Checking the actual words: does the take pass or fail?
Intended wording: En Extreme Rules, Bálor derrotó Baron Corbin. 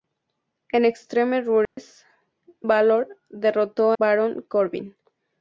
pass